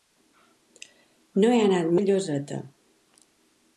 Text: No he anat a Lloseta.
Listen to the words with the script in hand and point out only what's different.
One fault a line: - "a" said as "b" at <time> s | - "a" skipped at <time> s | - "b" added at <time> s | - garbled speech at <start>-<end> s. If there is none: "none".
none